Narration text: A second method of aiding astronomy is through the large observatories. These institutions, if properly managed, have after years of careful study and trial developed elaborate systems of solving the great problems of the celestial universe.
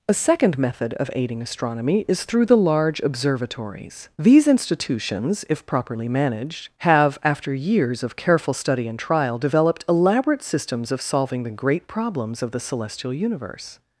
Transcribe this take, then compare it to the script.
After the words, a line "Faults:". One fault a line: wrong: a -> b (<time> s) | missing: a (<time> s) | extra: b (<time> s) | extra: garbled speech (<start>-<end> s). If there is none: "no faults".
A second method of aiding astronomy is through the large observatories. These institutions, if properly managed, have after years of careful study and trial developed elaborate systems of solving the great problems of the celestial universe.
Faults:
no faults